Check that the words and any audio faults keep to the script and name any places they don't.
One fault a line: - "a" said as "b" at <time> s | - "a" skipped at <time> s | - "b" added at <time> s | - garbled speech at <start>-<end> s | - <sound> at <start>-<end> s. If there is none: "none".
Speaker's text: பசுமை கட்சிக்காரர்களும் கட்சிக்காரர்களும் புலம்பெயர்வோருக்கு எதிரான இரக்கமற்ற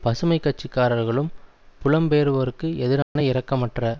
- "கட்சிக்காரர்களும்" skipped at 1.3 s
- dropout at 3.0-3.2 s